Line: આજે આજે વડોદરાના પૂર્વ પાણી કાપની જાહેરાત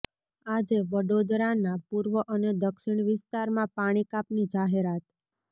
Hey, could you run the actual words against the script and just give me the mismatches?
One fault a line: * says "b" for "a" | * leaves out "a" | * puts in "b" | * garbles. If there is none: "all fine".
* leaves out "આજે"
* puts in "અને દક્ષિણ વિસ્તારમાં"